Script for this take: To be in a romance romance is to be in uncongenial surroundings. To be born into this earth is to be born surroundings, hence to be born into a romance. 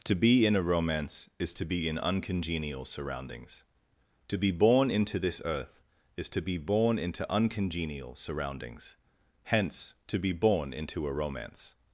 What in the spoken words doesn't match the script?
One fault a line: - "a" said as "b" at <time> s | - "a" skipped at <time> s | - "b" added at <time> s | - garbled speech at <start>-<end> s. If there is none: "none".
- "romance" skipped at 1.3 s
- "into uncongenial" added at 7.0 s